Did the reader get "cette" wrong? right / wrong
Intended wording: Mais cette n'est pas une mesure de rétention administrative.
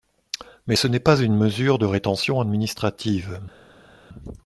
wrong